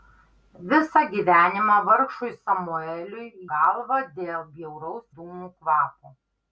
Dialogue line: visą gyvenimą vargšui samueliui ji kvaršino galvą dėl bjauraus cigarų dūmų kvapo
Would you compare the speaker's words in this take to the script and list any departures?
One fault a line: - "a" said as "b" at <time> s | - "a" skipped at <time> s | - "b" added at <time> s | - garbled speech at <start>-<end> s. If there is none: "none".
- "ji kvaršino" skipped at 3.3 s
- "cigarų" skipped at 5.1 s